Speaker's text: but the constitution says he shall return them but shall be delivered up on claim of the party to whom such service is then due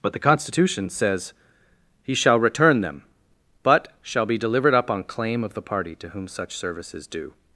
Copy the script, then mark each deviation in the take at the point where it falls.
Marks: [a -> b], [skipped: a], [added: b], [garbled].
but the constitution says he shall return them but shall be delivered up on claim of the party to whom such service is [skipped: then] due